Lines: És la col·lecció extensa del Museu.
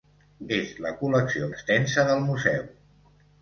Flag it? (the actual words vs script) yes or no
no